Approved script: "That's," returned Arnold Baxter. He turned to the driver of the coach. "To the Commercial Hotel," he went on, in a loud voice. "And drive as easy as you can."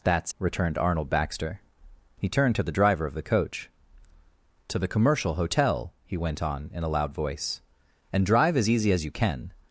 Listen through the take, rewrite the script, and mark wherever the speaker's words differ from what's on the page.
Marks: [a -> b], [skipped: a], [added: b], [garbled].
"That's," returned Arnold Baxter. He turned to the driver of the coach. "To the Commercial Hotel," he went on, in a loud voice. "And drive as easy as you can."